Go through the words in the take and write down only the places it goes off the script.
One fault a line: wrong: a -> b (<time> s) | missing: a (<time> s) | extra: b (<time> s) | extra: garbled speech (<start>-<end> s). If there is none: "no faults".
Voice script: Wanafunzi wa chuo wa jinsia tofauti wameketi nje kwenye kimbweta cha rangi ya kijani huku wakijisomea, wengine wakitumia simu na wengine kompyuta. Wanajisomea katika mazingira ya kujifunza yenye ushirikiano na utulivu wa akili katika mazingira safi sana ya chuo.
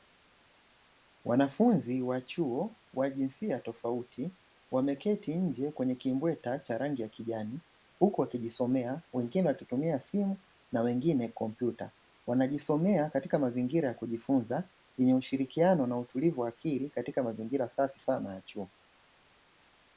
no faults